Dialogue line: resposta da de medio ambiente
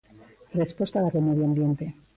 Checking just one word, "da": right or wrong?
right